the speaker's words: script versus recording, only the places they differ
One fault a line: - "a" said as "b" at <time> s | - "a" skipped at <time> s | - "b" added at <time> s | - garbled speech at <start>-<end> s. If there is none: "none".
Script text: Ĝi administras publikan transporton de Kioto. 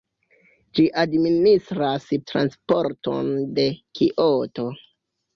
- "publikan" skipped at 2.1 s